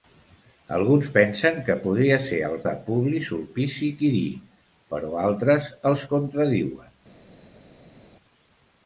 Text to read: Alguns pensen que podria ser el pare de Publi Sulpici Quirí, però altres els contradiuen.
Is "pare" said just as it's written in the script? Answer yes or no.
no